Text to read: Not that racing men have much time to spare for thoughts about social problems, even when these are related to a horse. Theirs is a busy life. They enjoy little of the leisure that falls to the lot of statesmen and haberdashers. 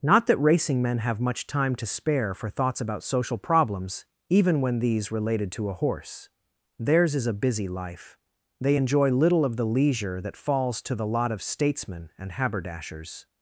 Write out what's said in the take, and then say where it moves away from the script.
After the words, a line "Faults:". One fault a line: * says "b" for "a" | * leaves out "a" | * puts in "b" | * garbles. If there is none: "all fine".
Not that racing men have much time to spare for thoughts about social problems, even when these related to a horse. Theirs is a busy life. They enjoy little of the leisure that falls to the lot of statesmen and haberdashers.
Faults:
* leaves out "are"